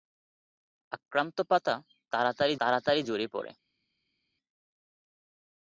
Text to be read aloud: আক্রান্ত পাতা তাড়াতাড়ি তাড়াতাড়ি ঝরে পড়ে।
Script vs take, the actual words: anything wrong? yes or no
no